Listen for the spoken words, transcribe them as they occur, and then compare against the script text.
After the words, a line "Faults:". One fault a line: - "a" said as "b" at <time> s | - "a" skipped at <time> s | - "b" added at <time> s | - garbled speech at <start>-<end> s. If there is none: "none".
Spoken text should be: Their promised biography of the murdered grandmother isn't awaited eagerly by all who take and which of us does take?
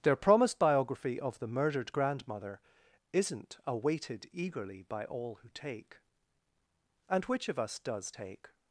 Their promised biography of the murdered grandmother isn't awaited eagerly by all who take and which of us does take?
Faults:
none